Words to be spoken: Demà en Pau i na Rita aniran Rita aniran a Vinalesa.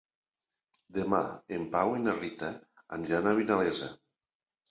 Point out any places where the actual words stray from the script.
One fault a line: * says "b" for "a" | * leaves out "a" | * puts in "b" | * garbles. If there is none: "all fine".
* leaves out "Rita aniran"